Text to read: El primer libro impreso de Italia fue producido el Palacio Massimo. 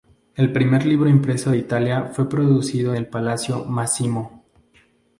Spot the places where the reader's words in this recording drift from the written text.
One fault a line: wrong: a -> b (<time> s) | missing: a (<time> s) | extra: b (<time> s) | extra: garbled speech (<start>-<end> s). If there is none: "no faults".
no faults